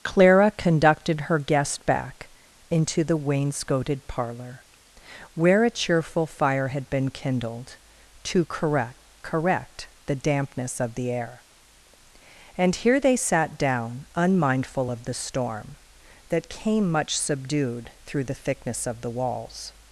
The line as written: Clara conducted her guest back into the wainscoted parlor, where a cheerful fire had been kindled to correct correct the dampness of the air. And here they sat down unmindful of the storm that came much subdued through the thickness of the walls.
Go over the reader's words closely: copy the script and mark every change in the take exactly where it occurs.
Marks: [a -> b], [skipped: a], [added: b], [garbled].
Clara conducted her guest back into the wainscoted parlor, where a cheerful fire had been kindled to correct correct the dampness of the air. And here they sat down unmindful of the storm that came much subdued through the thickness of the walls.